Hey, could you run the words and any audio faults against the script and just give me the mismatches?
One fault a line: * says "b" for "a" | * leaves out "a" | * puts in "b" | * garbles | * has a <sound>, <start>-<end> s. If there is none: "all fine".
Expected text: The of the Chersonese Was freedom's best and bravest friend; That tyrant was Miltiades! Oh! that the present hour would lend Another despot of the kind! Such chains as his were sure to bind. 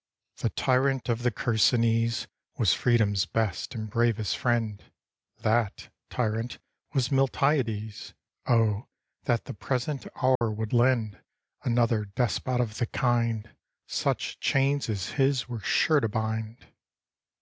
* puts in "tyrant"
* has a dropout, 10.4-10.4 s